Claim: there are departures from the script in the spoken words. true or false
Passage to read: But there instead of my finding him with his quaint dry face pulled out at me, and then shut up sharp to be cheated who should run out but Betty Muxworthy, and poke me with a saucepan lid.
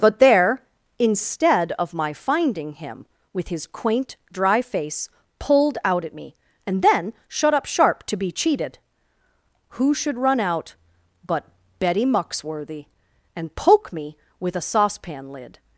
false